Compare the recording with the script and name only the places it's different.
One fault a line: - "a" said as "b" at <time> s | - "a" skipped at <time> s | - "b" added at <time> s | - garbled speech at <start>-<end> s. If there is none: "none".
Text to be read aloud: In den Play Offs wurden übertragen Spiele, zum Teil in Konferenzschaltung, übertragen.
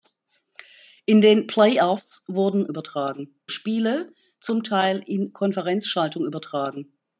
none